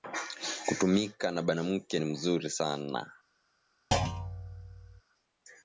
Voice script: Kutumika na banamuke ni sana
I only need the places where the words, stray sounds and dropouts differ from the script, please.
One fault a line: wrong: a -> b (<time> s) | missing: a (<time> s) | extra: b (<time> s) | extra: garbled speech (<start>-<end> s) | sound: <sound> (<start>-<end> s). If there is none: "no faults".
extra: muzuri (2.0 s)
sound: thud (3.9-5.0 s)